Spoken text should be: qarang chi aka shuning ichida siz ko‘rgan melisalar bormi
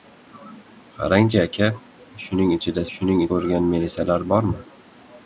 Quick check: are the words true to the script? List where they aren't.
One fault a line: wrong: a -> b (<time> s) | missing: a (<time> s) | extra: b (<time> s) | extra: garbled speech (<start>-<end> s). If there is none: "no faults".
wrong: siz -> shuning (3.0 s)